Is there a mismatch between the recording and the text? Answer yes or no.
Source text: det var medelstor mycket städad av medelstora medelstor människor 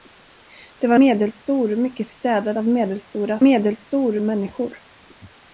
no